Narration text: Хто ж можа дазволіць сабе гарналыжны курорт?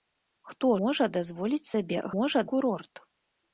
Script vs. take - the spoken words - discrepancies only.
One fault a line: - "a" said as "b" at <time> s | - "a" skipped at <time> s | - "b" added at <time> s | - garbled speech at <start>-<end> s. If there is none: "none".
- "ж" skipped at 0.7 s
- "гарналыжны" said as "можа" at 2.1 s